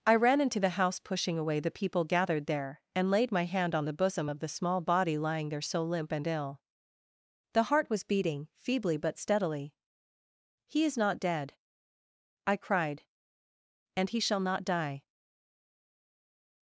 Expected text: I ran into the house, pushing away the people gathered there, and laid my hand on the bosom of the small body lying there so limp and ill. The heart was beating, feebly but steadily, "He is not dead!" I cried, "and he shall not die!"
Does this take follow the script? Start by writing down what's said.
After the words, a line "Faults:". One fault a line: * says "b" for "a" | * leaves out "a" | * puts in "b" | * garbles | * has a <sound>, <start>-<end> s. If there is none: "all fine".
I ran into the house, pushing away the people gathered there, and laid my hand on the bosom of the small body lying there so limp and ill. The heart was beating, feebly but steadily, "He is not dead!" I cried, "and he shall not die!"
Faults:
all fine